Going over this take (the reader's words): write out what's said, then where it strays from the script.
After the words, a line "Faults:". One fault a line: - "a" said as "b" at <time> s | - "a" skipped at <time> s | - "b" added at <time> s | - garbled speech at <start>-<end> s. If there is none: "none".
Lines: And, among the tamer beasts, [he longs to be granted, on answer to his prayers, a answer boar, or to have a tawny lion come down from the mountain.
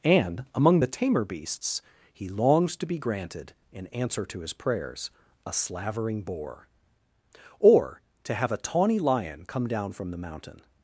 And, among the tamer beasts, [he longs to be granted, in answer to his prayers, a slavering boar, or to have a tawny lion come down from the mountain.
Faults:
- "on" said as "in" at 3.7 s
- "answer" said as "slavering" at 5.5 s